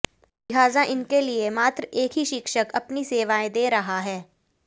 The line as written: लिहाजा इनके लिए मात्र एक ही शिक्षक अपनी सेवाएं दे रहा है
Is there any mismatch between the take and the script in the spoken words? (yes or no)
no